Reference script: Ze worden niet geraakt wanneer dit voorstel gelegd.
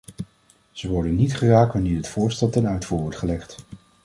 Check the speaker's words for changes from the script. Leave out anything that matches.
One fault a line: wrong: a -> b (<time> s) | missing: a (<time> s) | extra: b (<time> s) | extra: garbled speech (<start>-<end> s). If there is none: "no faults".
extra: ten uitvoer wordt (2.5 s)